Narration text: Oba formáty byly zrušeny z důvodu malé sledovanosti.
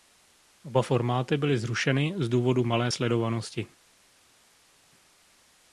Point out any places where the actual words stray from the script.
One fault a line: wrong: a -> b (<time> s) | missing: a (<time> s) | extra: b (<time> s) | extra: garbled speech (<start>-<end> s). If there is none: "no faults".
no faults